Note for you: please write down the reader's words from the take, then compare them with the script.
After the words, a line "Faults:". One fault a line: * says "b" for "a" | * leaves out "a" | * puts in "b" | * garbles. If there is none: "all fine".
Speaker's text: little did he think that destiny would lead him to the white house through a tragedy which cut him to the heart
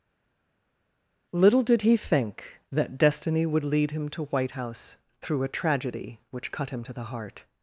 little did he think that destiny would lead him to white house through a tragedy which cut him to the heart
Faults:
* leaves out "the"